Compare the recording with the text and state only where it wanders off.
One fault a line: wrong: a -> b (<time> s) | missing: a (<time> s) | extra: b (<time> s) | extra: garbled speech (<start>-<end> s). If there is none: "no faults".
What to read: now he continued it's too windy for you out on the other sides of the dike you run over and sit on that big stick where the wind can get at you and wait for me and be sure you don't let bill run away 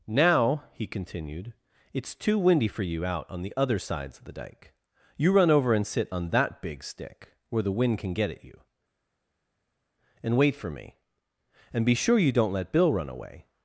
no faults